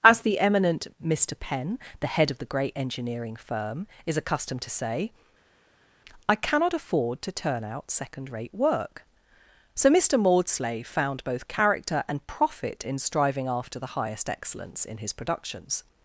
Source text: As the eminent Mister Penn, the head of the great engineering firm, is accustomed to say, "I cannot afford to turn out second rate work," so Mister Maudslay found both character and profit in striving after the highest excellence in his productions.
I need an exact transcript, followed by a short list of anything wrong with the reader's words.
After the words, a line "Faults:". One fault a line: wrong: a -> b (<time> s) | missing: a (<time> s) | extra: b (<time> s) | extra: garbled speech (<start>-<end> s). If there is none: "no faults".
As the eminent Mister Penn, the head of the great engineering firm, is accustomed to say, "I cannot afford to turn out second rate work," so Mister Maudslay found both character and profit in striving after the highest excellence in his productions.
Faults:
no faults